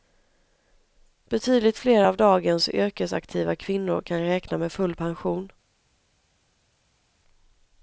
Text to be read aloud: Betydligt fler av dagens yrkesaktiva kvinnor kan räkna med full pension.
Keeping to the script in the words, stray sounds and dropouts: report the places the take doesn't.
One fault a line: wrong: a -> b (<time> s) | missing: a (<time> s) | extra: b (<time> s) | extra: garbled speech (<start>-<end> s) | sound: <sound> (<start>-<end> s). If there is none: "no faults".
no faults